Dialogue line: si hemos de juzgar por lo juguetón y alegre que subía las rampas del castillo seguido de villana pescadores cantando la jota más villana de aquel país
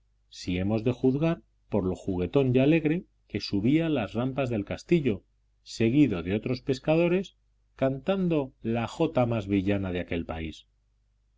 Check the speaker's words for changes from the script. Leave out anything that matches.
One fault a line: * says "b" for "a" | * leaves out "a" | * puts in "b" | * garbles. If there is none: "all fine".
* says "otros" for "villana"